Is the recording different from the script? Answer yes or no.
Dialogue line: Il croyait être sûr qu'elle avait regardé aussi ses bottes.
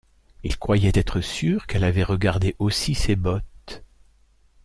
no